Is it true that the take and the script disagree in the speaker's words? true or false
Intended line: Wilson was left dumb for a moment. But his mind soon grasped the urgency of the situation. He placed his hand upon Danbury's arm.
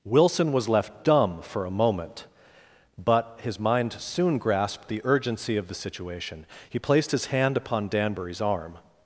false